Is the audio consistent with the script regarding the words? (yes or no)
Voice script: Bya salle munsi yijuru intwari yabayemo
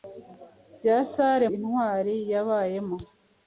no